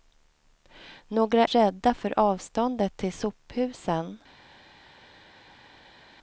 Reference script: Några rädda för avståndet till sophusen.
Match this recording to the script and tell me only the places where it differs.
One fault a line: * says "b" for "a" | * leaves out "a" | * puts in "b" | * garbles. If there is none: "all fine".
all fine